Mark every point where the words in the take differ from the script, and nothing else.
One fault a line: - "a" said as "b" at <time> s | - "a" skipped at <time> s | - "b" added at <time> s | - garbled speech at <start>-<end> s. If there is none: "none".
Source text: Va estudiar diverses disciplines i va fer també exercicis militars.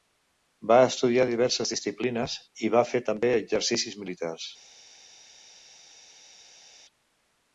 none